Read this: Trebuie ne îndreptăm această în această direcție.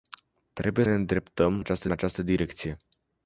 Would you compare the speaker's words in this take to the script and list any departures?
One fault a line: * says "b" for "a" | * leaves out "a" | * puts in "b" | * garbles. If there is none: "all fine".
all fine